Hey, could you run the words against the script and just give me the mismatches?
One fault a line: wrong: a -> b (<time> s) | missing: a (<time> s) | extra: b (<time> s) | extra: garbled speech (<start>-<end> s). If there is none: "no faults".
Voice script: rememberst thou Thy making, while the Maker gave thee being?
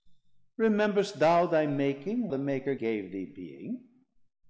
missing: while (2.3 s)